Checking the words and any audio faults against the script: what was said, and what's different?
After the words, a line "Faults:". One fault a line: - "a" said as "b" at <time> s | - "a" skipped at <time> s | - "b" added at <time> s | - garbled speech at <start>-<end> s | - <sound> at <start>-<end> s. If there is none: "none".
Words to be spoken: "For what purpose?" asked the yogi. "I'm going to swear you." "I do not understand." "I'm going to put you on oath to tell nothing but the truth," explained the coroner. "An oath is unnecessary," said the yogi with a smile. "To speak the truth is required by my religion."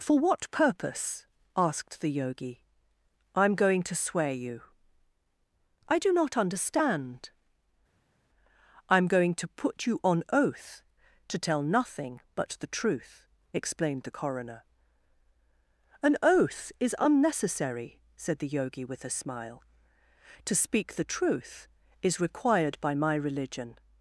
"For what purpose?" asked the yogi. "I'm going to swear you." "I do not understand." "I'm going to put you on oath to tell nothing but the truth," explained the coroner. "An oath is unnecessary," said the yogi with a smile. "To speak the truth is required by my religion."
Faults:
none